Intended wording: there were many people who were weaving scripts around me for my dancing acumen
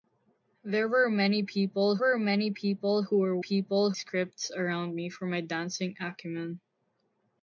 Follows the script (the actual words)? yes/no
no